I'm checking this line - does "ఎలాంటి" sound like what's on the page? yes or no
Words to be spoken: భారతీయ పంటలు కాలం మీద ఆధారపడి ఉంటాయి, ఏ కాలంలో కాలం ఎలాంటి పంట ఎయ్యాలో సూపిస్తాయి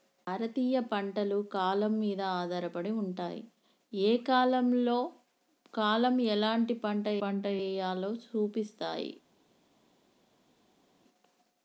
yes